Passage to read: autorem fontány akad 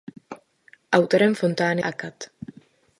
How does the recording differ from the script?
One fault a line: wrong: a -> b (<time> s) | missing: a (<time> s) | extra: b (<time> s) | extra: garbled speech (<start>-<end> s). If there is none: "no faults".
no faults